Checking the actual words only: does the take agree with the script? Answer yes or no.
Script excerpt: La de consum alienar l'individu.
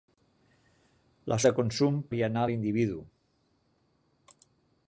yes